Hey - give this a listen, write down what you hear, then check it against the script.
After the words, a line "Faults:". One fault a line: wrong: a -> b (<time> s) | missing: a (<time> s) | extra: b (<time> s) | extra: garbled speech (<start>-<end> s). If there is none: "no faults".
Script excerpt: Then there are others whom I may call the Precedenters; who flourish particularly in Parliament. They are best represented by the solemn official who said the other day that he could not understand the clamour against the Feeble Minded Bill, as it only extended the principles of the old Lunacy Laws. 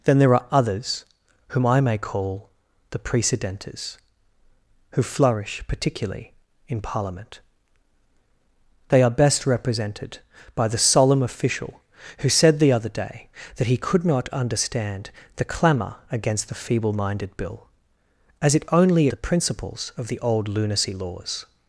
Then there are others whom I may call the Precedenters; who flourish particularly in Parliament. They are best represented by the solemn official who said the other day that he could not understand the clamour against the Feeble Minded Bill, as it only the principles of the old Lunacy Laws.
Faults:
missing: extended (19.1 s)